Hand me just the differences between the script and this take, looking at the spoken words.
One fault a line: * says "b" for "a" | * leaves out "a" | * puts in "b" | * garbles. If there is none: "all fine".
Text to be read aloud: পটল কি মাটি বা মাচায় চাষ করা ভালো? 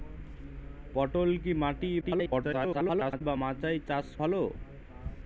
* garbles
* leaves out "করা"